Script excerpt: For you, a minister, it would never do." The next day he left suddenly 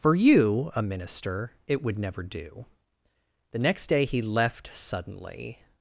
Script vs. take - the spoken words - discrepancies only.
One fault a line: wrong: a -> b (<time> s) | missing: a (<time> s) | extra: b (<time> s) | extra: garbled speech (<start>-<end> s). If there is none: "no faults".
no faults